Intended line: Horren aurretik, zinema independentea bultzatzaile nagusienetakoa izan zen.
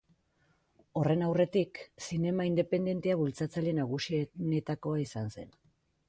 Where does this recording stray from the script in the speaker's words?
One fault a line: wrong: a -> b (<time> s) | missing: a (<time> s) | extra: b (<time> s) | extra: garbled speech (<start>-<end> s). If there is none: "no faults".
no faults